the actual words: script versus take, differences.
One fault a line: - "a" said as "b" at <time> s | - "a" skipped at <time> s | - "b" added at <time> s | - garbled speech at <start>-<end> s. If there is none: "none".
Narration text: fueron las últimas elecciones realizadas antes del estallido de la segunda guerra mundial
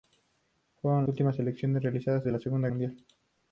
- "las" skipped at 1.1 s
- "antes del estallido" skipped at 2.3 s
- "guerra" skipped at 2.7 s